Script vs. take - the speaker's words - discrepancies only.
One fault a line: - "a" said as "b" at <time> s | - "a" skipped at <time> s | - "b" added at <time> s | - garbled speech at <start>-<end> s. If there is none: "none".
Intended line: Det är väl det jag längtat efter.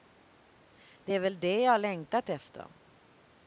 none